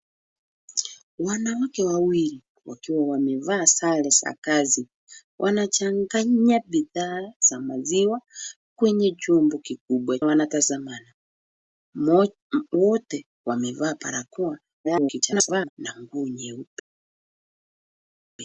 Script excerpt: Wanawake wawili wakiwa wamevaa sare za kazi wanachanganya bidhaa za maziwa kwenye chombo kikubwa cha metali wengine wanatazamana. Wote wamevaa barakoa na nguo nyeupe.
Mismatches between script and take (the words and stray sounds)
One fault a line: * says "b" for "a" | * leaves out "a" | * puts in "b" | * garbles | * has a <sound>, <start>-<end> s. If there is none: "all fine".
* leaves out "cha metali wengine"
* garbles